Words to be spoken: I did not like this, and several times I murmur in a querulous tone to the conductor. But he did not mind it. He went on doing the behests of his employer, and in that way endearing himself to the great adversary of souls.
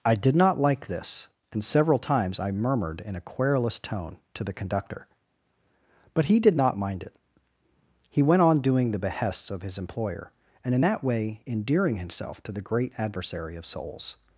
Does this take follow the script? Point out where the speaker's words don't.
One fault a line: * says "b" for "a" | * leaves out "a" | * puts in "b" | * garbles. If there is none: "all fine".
* says "murmured" for "murmur"